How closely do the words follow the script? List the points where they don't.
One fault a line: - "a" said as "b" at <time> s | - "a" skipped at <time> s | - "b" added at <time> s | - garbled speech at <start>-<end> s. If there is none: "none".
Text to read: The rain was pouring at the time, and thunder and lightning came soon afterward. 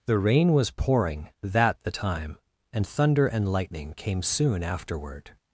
- "at" said as "that" at 1.4 s